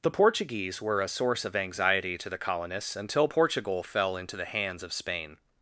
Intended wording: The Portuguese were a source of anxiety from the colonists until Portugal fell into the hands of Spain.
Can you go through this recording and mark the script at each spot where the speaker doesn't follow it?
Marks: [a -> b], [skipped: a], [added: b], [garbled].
The Portuguese were a source of anxiety [from -> to] the colonists until Portugal fell into the hands of Spain.